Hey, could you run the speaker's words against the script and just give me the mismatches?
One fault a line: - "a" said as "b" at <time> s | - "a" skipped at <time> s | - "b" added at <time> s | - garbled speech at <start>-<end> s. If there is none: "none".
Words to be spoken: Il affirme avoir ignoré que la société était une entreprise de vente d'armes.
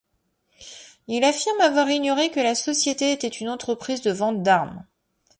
none